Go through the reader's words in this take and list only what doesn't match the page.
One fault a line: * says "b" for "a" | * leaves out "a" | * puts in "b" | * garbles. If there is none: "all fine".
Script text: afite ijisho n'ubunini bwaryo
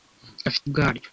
* leaves out "ijisho n'ubunini"